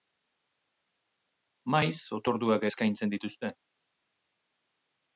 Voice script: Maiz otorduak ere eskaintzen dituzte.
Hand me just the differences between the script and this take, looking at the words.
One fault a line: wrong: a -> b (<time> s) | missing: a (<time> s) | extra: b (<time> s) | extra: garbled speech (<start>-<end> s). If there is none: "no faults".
missing: ere (2.6 s)